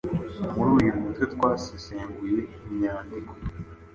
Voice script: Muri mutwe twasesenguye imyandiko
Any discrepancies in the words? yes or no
yes